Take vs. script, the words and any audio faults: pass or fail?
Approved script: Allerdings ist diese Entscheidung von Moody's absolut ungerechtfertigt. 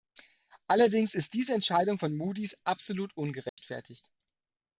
fail